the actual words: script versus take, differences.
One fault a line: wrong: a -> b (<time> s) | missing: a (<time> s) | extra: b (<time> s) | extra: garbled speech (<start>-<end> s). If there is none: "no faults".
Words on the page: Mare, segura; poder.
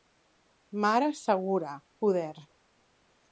no faults